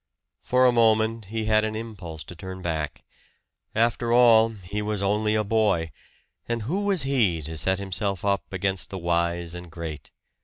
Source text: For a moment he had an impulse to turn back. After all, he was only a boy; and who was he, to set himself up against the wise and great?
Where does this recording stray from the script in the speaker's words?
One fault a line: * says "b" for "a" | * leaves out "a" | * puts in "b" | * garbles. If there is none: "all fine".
all fine